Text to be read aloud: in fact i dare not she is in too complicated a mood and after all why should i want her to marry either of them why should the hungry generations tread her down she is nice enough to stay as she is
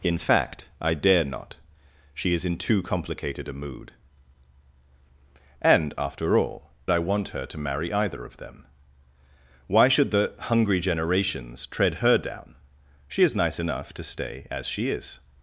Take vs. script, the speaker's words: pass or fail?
fail